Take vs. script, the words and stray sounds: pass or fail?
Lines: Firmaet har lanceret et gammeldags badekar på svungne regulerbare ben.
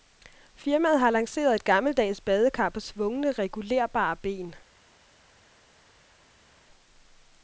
pass